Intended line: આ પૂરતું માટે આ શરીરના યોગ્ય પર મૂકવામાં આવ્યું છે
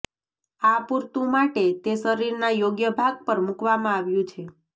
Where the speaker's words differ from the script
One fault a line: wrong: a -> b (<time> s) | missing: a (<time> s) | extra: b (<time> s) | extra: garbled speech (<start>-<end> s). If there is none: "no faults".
wrong: આ -> તે (1.8 s)
extra: ભાગ (3.0 s)